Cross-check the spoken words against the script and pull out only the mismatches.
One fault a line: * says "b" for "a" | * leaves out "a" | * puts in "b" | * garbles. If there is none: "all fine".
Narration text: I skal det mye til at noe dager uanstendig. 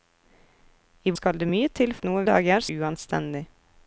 all fine